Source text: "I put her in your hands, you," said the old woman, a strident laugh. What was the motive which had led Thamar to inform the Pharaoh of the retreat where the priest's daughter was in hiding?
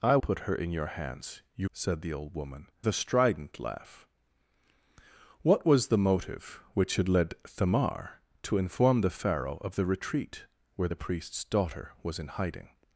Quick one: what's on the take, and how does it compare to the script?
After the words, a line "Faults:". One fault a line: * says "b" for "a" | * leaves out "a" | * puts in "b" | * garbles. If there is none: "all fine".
"I put her in your hands, you," said the old woman, a strident laugh. What was the motive which had led Thamar to inform the Pharaoh of the retreat where the priest's daughter was in hiding?
Faults:
all fine